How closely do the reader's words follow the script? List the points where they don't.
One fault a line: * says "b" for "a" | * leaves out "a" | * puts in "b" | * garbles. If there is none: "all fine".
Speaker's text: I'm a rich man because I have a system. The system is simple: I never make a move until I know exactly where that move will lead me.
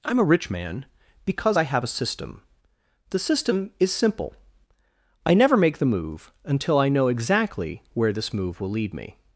* says "the" for "a"
* says "this" for "that"